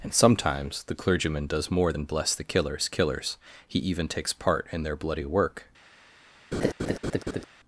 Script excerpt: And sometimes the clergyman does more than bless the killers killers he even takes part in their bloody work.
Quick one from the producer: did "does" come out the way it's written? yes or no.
yes